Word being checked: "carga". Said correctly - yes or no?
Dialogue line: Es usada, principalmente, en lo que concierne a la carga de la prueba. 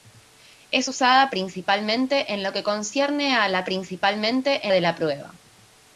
no